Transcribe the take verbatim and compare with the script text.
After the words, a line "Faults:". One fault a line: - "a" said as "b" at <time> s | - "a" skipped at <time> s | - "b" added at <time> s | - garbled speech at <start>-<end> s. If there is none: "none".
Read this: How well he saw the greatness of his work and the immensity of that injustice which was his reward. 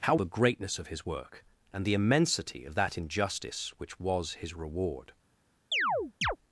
How the greatness of his work and the immensity of that injustice which was his reward.
Faults:
- "well he saw" skipped at 0.1 s